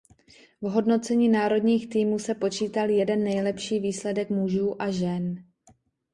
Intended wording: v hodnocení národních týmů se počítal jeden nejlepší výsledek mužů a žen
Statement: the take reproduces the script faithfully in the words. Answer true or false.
true